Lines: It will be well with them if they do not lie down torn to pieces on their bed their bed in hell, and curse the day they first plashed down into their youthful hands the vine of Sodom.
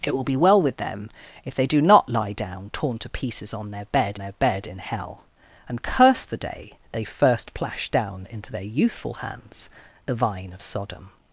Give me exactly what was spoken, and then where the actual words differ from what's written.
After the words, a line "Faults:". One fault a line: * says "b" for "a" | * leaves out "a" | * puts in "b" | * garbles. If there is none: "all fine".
It will be well with them if they do not lie down torn to pieces on their bed their bed in hell, and curse the day they first plashed down into their youthful hands the vine of Sodom.
Faults:
all fine